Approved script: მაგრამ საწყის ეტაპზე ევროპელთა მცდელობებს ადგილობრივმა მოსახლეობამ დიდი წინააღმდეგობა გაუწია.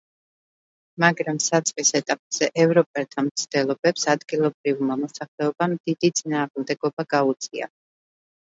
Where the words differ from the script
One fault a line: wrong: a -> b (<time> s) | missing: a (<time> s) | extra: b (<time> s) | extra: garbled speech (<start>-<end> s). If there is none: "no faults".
no faults